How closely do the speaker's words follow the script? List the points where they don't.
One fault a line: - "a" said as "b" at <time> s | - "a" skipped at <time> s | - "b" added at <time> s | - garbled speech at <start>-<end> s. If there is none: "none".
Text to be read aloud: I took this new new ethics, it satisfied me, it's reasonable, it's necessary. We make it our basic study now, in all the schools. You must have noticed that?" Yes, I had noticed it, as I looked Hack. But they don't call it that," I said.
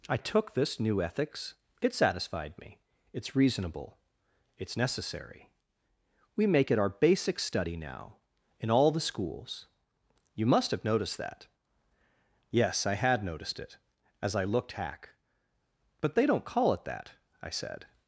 - "new" skipped at 1.0 s